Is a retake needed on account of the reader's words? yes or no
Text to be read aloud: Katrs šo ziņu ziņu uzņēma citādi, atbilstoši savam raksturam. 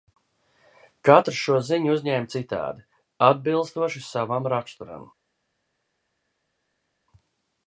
yes